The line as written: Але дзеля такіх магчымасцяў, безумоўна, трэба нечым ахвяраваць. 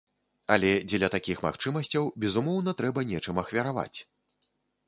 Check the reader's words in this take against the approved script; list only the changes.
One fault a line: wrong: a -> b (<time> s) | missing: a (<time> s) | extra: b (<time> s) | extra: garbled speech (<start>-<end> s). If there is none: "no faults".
no faults